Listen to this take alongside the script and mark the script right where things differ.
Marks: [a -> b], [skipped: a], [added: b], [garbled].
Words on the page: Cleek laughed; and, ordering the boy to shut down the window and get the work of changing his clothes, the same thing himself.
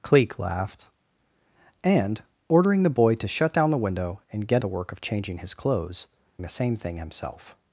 Cleek laughed; and, ordering the boy to shut down the window and get the work of changing his clothes, the same thing himself.